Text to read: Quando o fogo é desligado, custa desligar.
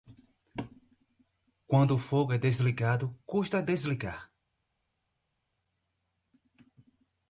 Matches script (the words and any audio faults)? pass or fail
pass